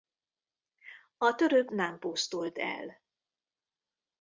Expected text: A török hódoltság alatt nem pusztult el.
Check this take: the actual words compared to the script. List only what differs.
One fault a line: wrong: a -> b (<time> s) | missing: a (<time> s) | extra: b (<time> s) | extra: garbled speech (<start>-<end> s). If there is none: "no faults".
missing: hódoltság alatt (1.7 s)